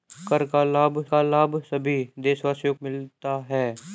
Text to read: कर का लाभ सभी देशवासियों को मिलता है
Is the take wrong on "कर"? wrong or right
right